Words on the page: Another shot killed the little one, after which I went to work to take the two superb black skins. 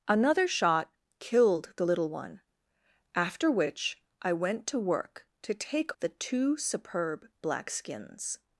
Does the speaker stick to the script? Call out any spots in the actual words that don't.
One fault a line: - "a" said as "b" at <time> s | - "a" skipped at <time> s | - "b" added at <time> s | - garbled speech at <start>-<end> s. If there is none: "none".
none